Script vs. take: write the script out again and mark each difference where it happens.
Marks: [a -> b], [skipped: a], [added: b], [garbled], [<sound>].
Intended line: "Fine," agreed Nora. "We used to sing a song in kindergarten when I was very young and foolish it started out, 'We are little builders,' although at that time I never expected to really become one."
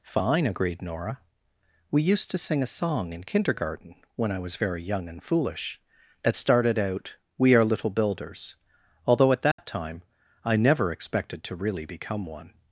"Fine," agreed Nora. "We used to sing a song in kindergarten when I was very young and foolish it started out, 'We are little builders,' although at that [dropout] time I never expected to really become one."